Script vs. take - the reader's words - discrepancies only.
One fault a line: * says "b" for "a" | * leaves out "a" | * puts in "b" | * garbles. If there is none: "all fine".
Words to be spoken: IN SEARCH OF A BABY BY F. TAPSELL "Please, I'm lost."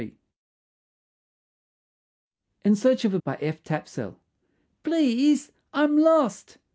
* leaves out "BABY"